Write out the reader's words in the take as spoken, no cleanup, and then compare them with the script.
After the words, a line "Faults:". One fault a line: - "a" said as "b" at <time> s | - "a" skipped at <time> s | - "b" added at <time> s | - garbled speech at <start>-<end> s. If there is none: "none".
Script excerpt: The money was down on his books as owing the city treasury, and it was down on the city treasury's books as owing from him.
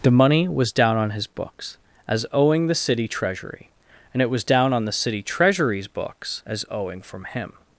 The money was down on his books as owing the city treasury, and it was down on the city treasury's books as owing from him.
Faults:
none